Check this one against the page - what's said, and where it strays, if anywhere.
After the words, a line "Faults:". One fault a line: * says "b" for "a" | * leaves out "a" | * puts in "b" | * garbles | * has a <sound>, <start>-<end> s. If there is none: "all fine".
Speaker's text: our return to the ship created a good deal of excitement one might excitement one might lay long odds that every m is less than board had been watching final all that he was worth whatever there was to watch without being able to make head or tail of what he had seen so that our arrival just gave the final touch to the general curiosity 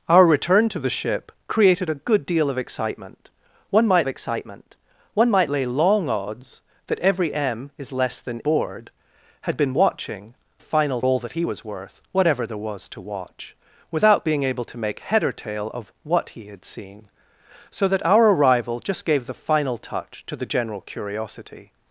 our return to the ship created a good deal of excitement one might excitement one might lay long odds that every m is less than board had been watching final all that he was worth whatever there was to watch without being able to make head or tail of what he had seen so that our arrival just gave the final touch to the general curiosity
Faults:
all fine